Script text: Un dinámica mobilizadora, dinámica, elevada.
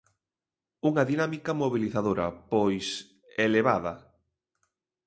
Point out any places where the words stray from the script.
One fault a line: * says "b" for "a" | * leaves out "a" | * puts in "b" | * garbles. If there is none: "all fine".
* says "Unha" for "Un"
* says "pois" for "dinámica"